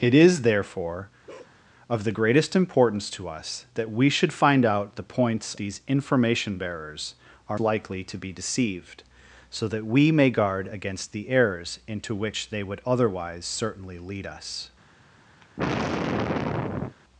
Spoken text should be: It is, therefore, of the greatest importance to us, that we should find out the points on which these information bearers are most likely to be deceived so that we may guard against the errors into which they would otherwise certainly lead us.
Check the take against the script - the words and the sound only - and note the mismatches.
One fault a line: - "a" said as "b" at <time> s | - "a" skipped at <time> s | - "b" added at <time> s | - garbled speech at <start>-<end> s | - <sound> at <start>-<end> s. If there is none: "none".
- bark at 1.3-1.6 s
- "on which" skipped at 5.5 s
- "most" skipped at 7.6 s
- sigh at 15.4-17.0 s